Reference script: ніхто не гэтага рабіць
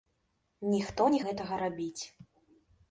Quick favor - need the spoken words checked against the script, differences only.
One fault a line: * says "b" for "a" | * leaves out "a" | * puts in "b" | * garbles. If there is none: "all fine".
all fine